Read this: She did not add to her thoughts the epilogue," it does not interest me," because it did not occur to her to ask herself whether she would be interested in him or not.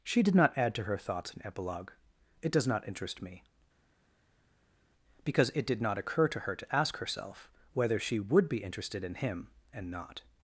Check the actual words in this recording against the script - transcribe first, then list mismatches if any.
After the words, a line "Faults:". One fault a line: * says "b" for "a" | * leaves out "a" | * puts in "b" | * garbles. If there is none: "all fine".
She did not add to her thoughts an epilogue," it does not interest me," because it did not occur to her to ask herself whether she would be interested in him and not.
Faults:
* says "an" for "the"
* says "and" for "or"